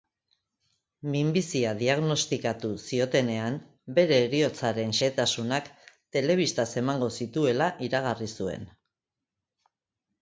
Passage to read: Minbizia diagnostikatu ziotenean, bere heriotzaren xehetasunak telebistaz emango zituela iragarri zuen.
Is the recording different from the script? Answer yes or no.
no